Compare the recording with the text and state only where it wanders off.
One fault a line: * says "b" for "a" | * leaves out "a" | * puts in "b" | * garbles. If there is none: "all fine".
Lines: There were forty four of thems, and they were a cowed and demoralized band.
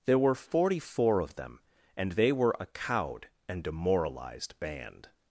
* says "them" for "thems"